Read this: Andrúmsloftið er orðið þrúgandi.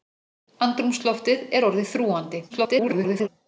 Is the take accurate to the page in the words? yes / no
no